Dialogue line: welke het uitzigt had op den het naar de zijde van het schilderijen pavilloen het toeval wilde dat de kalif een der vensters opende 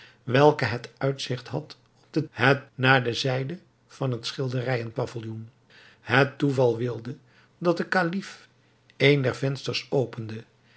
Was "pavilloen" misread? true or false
false